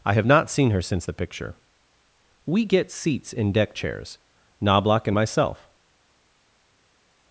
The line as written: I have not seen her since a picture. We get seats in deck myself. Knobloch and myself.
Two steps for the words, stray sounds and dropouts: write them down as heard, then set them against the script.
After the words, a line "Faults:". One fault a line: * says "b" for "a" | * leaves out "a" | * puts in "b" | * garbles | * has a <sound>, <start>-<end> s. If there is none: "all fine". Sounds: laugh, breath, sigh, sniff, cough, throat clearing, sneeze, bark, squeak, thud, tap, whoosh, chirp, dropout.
I have not seen her since the picture. We get seats in deck chairs. Knobloch and myself.
Faults:
* says "the" for "a"
* says "chairs" for "myself"